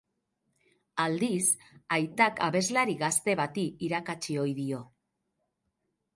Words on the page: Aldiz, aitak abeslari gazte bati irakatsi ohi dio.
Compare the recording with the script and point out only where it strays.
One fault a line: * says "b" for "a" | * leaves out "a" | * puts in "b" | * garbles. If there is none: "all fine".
all fine